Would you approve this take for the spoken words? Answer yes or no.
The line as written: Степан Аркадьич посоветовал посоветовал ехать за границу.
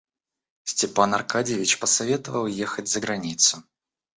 no